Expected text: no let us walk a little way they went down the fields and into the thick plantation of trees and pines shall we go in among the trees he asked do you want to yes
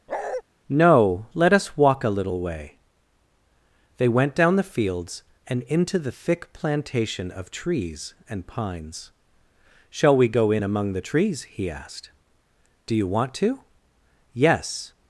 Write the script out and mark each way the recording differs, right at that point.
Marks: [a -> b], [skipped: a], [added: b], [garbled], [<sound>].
[bark] no let us walk a little way they went down the fields and into the thick plantation of trees and pines shall we go in among the trees he asked do you want to yes